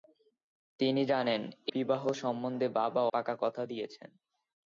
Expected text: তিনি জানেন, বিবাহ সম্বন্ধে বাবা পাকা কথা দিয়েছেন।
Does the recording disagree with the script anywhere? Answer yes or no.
no